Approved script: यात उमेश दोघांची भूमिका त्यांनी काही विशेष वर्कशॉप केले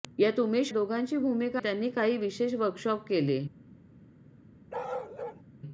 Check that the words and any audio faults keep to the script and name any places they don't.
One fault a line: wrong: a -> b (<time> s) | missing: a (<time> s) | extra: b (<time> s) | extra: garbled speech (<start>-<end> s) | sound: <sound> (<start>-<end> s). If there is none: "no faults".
sound: bark (4.7-5.4 s)